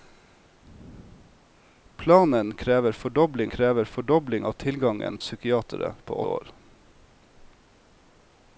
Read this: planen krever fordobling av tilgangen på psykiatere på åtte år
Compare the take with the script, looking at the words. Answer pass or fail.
fail